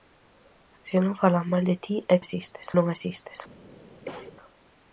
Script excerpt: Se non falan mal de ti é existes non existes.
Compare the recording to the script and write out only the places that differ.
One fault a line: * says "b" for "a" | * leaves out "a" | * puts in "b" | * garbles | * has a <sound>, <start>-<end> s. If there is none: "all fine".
* has a cough, 4.1-4.3 s